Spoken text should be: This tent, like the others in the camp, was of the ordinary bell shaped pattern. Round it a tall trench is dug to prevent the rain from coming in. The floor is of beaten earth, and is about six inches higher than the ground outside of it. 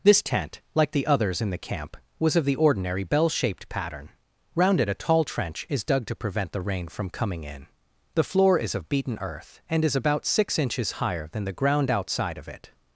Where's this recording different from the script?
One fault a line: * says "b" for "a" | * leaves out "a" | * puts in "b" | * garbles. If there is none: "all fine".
all fine